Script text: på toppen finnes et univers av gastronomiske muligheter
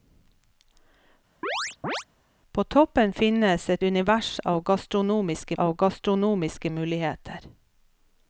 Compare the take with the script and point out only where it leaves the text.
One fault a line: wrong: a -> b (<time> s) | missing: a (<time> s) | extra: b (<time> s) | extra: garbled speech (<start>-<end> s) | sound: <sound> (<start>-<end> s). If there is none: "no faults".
sound: chirp (1.4-2.0 s)
extra: av gastronomiske (5.6 s)